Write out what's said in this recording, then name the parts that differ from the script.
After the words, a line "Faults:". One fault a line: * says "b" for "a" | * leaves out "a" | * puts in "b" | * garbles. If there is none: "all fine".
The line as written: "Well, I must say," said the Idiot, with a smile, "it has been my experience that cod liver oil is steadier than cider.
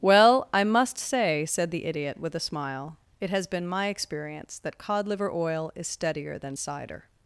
"Well, I must say," said the Idiot, with a smile, "it has been my experience that cod liver oil is steadier than cider.
Faults:
all fine